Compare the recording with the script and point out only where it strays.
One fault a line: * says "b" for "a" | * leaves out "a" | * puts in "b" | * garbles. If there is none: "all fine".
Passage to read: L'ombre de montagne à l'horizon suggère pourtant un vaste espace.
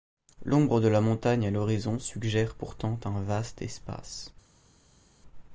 * puts in "la"